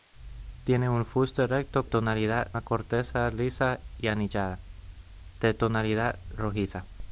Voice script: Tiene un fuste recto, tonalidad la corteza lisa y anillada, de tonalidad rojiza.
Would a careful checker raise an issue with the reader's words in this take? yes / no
no